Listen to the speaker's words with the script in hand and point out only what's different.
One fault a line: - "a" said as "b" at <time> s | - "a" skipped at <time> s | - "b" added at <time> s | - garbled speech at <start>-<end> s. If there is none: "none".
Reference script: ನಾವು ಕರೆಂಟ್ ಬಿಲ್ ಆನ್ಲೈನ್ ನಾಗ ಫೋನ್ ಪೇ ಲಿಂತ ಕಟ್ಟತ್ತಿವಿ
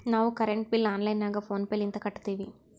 none